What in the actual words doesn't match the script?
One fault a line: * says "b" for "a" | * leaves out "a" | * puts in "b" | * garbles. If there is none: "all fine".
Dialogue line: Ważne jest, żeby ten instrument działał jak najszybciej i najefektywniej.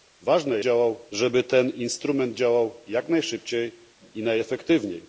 * says "działał" for "jest"